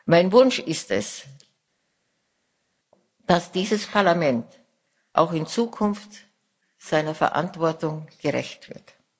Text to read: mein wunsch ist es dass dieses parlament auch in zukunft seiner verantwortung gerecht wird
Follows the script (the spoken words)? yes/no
yes